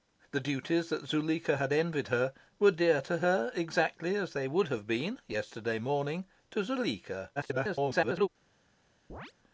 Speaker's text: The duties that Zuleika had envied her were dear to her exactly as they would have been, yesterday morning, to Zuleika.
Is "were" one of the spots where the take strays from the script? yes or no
no